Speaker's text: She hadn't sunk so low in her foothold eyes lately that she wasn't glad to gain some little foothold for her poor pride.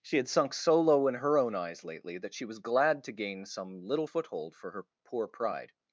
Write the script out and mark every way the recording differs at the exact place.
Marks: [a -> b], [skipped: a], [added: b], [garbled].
She [hadn't -> had] sunk so low in her [foothold -> own] eyes lately that she [wasn't -> was] glad to gain some little foothold for her poor pride.